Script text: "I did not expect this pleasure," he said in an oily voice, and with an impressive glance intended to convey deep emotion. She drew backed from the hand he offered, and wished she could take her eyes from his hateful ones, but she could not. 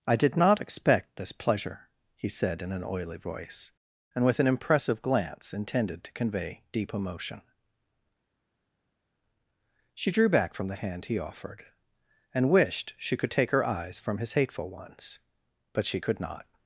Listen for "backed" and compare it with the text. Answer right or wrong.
wrong